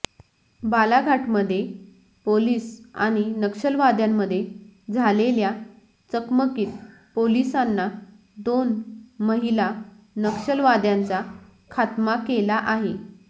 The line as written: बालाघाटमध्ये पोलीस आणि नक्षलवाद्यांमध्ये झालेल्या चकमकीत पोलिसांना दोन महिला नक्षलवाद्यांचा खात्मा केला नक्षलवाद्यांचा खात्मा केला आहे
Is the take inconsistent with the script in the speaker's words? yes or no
yes